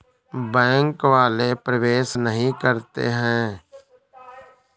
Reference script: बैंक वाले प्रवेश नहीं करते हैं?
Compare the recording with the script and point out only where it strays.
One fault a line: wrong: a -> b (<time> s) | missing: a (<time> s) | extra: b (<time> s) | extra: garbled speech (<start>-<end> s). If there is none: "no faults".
no faults